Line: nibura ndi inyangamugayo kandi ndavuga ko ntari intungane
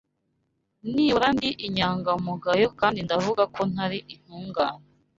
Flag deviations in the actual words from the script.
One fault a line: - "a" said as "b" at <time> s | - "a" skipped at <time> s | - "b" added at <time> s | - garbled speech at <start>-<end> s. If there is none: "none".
none